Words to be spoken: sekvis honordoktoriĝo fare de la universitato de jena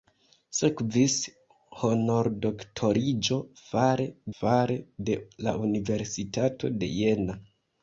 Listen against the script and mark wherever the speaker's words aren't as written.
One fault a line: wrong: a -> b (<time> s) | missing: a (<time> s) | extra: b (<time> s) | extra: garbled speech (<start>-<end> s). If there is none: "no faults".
extra: fare (4.4 s)